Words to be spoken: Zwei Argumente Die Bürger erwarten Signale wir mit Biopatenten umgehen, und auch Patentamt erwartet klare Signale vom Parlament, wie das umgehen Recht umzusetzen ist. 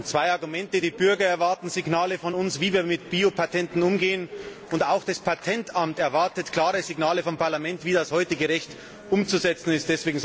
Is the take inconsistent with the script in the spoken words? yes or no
yes